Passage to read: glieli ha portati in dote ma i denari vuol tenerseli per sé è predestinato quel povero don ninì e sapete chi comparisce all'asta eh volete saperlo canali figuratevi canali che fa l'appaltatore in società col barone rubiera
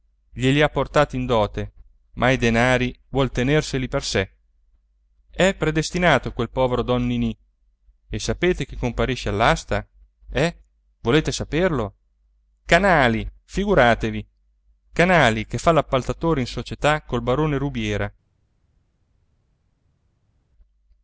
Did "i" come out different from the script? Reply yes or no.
no